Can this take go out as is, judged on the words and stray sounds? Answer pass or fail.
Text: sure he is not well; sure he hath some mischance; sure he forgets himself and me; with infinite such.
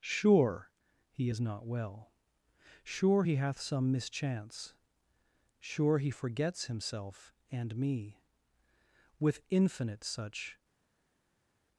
pass